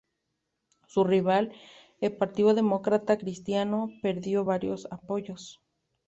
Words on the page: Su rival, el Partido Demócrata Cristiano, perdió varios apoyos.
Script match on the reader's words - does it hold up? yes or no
yes